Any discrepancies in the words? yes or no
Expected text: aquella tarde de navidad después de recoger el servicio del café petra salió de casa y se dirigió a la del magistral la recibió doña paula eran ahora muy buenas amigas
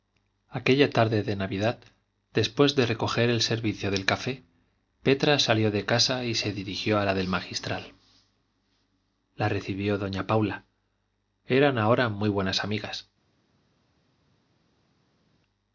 no